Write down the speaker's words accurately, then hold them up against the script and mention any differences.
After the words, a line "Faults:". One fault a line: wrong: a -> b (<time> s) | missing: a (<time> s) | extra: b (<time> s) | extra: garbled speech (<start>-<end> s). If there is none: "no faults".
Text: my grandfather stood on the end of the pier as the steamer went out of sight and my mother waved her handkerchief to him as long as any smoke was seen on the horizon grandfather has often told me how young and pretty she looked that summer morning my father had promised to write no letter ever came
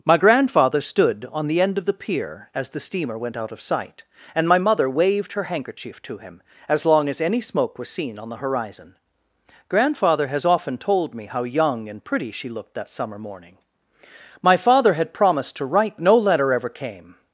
my grandfather stood on the end of the pier as the steamer went out of sight and my mother waved her handkerchief to him as long as any smoke was seen on the horizon grandfather has often told me how young and pretty she looked that summer morning my father had promised to write no letter ever came
Faults:
no faults